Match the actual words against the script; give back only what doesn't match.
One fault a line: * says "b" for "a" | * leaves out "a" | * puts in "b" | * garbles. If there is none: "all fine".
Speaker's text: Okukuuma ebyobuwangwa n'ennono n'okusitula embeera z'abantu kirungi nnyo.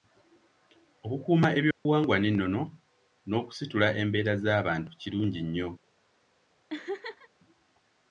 all fine